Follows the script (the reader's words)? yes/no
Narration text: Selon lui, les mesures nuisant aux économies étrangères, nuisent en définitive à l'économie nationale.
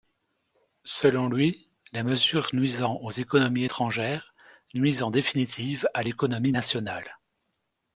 yes